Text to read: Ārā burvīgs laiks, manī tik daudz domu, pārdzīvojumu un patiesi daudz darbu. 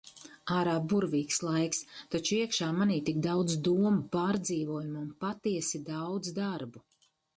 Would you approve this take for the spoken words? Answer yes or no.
no